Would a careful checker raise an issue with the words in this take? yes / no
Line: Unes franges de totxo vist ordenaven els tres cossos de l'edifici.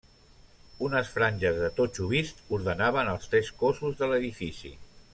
no